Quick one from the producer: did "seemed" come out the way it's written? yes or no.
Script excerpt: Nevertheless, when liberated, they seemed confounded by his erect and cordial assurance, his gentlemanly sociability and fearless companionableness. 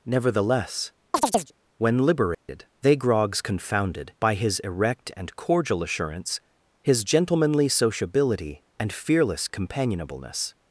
no